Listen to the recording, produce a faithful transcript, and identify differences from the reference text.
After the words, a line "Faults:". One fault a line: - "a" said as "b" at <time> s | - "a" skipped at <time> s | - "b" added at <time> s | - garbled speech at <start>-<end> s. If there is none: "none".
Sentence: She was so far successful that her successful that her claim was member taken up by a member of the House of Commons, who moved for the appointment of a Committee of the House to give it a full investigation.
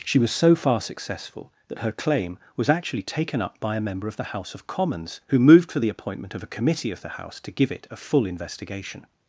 She was so far successful that her claim was actually taken up by a member of the House of Commons, who moved for the appointment of a Committee of the House to give it a full investigation.
Faults:
- "successful that her" skipped at 1.9 s
- "member" said as "actually" at 2.7 s